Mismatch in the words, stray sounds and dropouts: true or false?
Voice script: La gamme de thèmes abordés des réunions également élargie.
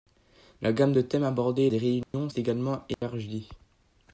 true